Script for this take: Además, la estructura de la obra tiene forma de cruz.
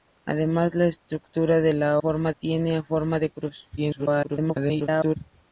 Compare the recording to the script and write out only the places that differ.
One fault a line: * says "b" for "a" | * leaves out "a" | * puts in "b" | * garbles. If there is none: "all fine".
* says "forma" for "obra"
* garbles